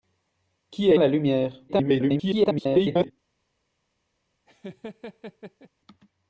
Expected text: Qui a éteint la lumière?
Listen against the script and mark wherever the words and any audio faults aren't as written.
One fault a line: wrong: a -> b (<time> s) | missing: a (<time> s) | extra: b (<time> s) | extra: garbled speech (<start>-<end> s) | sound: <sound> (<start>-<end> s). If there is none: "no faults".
missing: éteint (0.9 s)
extra: garbled speech (1.7-3.1 s)
sound: laugh (4.5-5.7 s)